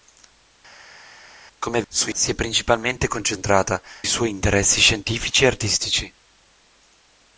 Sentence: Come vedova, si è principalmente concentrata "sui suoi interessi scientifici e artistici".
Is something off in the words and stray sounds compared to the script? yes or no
yes